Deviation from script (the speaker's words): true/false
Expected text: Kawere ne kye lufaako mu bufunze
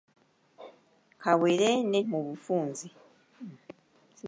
true